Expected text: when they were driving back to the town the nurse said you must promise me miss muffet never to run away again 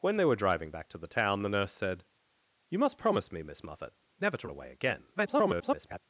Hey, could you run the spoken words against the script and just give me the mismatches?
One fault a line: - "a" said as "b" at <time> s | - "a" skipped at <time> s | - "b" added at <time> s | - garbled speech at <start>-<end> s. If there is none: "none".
- "run" skipped at 4.5 s
- garbled speech at 5.1-6.0 s